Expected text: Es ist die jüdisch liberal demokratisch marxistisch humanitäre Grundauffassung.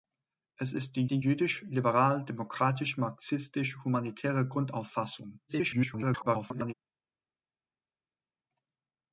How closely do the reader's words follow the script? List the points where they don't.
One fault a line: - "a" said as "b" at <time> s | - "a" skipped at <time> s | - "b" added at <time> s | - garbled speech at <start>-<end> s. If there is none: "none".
- "die" added at 1.1 s
- garbled speech at 5.5-6.7 s